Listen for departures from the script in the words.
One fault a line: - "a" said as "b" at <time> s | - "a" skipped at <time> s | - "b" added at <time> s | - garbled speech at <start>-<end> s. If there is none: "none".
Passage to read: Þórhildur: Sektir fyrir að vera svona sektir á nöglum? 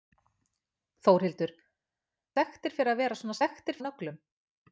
none